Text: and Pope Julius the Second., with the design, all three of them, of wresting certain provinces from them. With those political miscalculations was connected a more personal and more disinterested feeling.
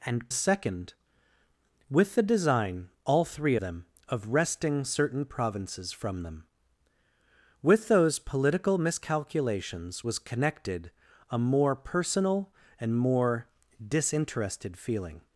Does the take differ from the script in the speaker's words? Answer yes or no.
yes